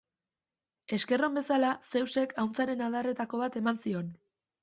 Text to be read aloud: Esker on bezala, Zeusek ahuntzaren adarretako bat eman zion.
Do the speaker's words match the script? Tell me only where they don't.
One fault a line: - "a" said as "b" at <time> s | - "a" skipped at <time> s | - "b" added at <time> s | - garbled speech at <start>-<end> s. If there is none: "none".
none